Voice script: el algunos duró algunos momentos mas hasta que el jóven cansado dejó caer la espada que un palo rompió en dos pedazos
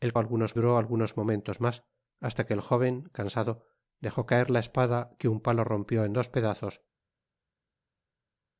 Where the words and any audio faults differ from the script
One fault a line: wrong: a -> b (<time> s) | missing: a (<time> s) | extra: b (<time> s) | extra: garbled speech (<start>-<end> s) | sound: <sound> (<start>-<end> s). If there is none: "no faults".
no faults